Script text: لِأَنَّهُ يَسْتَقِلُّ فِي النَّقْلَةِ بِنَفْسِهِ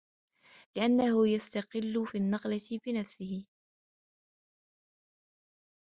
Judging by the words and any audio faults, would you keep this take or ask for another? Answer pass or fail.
pass